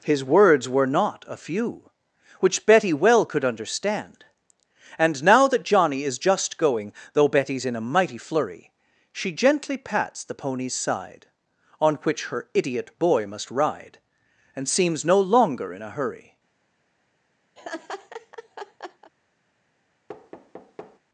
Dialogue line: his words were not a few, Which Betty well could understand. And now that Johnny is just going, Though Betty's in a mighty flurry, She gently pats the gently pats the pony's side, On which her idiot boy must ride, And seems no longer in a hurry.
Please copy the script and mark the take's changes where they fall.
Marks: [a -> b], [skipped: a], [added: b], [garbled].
his words were not a few, Which Betty well could understand. And now that Johnny is just going, Though Betty's in a mighty flurry, She gently pats the [skipped: gently pats the] pony's side, On which her idiot boy must ride, And seems no longer in a hurry.